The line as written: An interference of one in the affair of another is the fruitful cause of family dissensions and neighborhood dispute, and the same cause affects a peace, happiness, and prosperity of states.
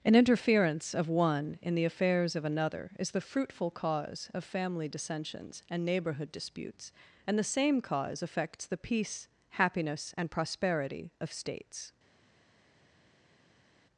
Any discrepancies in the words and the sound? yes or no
yes